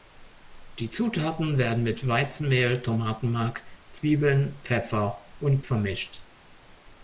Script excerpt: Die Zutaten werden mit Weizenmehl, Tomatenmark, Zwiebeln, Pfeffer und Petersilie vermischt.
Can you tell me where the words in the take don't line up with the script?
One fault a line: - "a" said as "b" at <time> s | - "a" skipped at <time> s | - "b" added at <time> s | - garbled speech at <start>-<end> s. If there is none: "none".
- "Petersilie" skipped at 5.6 s